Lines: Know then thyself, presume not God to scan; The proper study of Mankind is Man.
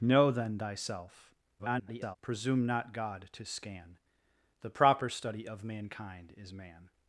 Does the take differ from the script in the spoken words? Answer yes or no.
yes